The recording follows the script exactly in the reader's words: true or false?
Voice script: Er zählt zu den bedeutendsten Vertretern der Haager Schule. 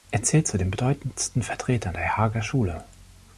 true